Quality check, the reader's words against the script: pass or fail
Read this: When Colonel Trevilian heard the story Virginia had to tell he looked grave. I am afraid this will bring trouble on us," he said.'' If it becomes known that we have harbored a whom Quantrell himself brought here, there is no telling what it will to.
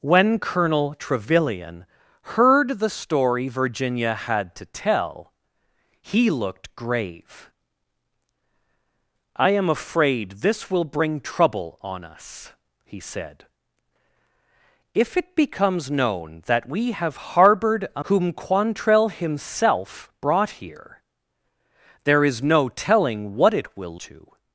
pass